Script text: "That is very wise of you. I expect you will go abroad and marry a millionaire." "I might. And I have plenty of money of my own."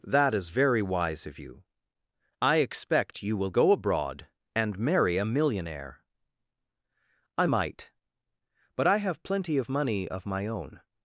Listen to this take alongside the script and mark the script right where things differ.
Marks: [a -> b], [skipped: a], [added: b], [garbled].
"That is very wise of you. I expect you will go abroad and marry a millionaire." "I might. [And -> But] I have plenty of money of my own."